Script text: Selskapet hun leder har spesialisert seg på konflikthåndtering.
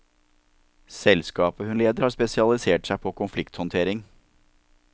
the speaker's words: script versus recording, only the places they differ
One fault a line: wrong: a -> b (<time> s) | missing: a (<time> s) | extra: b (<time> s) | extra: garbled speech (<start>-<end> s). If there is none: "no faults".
no faults